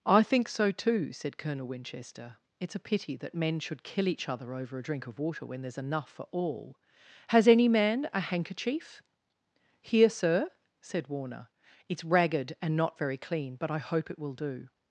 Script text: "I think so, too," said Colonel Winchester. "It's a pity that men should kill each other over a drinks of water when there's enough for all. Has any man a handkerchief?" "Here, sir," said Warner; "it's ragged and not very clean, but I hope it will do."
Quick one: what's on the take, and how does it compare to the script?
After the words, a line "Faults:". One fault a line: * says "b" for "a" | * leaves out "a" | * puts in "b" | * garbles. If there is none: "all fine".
"I think so, too," said Colonel Winchester. "It's a pity that men should kill each other over a drink of water when there's enough for all. Has any man a handkerchief?" "Here, sir," said Warner; "it's ragged and not very clean, but I hope it will do."
Faults:
* says "drink" for "drinks"